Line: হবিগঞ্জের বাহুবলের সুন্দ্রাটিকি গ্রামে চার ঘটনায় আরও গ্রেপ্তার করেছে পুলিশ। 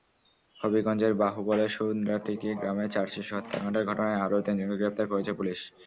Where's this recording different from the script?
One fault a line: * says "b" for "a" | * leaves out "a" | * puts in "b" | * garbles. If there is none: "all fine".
* puts in "শিশু হত্যাকাণ্ডের"
* puts in "তিনজনকে"